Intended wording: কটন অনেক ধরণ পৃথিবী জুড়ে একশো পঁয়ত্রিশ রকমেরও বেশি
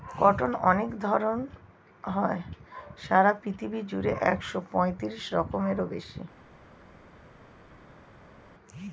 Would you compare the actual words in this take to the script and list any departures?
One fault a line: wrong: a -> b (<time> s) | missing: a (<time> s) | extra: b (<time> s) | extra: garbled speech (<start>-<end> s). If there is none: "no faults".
extra: হয় সারা (2.0 s)